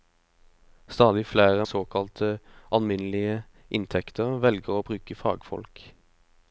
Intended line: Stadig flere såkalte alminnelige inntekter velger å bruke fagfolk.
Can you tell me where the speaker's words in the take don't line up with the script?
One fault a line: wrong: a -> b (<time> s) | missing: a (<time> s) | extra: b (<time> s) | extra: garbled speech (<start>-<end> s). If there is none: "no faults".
no faults